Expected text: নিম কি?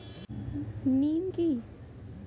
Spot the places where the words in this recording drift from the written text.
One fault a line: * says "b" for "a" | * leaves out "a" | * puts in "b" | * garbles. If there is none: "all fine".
all fine